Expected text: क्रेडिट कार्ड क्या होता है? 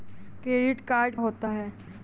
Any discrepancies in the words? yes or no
yes